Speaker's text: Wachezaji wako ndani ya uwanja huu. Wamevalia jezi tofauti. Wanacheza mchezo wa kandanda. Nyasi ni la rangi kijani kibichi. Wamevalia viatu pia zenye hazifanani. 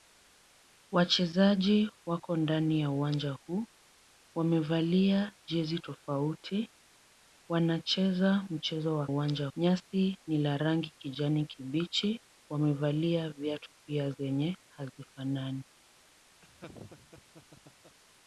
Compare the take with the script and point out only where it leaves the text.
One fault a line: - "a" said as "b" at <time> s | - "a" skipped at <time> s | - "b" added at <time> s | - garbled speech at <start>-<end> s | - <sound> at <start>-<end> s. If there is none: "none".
- "kandanda" said as "uwanja" at 9.1 s
- laugh at 16.4-18.0 s